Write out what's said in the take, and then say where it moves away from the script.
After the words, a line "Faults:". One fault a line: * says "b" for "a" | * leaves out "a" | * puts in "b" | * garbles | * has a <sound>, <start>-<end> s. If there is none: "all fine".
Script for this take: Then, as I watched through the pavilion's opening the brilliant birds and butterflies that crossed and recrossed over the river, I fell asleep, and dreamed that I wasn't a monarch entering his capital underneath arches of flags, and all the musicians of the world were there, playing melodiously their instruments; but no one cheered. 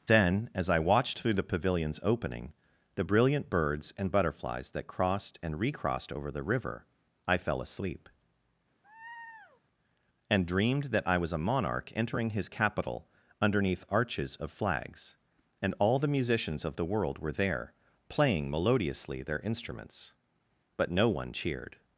Then, as I watched through the pavilion's opening the brilliant birds and butterflies that crossed and recrossed over the river, I fell asleep, and dreamed that I was a monarch entering his capital underneath arches of flags, and all the musicians of the world were there, playing melodiously their instruments; but no one cheered.
Faults:
* has a laugh, 8.8-9.6 s
* says "was" for "wasn't"